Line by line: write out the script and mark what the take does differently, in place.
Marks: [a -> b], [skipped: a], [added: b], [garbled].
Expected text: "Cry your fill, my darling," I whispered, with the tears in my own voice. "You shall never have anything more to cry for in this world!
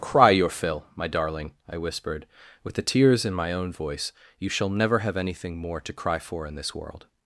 "Cry your fill, my darling," I whispered, with the tears in my own voice. "You shall never have anything more to cry for in this world!